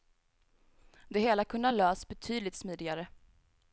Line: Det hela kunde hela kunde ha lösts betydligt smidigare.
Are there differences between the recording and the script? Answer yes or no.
yes